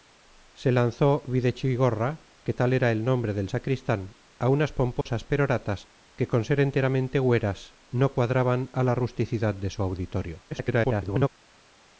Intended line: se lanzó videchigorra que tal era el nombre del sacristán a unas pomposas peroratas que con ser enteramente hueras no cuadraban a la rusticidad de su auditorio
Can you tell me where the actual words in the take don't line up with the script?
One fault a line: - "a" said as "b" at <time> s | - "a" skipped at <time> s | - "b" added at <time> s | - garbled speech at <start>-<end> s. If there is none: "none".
- garbled speech at 10.5-11.3 s